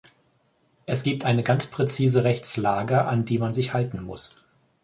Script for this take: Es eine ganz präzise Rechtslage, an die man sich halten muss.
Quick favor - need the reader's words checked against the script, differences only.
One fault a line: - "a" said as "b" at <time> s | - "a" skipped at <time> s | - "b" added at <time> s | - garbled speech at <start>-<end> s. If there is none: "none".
- "gibt" added at 1.0 s